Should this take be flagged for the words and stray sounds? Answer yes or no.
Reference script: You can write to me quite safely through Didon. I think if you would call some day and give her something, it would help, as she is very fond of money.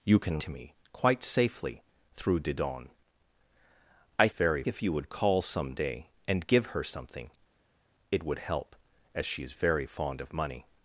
yes